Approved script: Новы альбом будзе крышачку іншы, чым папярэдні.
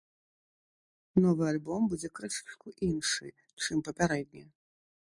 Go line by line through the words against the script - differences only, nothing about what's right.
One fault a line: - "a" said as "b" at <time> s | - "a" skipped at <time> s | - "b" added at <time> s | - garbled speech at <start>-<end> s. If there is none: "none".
none